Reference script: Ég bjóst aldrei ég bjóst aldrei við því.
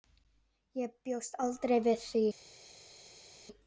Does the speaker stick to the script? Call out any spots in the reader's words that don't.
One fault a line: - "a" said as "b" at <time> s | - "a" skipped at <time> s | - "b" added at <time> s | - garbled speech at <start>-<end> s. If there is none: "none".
- "ég bjóst aldrei" skipped at 1.8 s